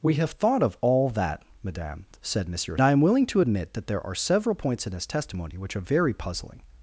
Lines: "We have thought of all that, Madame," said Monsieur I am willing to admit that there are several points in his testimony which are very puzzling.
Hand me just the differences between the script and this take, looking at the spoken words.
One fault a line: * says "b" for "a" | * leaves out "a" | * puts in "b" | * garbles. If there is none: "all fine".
all fine